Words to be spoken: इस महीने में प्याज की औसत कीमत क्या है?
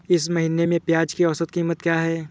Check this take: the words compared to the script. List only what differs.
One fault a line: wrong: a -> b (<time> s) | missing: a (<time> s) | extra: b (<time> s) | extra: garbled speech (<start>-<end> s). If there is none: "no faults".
no faults